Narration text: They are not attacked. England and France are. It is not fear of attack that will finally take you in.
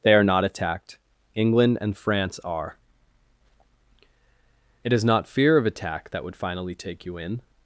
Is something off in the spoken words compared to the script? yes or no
yes